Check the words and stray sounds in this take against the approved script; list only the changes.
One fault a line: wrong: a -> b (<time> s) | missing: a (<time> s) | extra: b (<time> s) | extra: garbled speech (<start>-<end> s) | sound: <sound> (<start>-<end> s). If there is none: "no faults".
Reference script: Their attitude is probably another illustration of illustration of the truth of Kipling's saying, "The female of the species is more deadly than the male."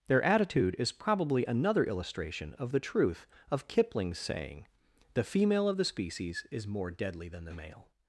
missing: illustration of (2.7 s)